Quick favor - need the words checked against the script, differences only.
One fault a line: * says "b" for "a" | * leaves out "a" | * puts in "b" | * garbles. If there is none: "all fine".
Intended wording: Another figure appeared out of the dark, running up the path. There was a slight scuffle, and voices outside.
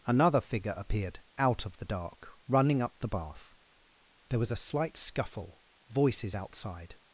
* says "bath" for "path"
* leaves out "and"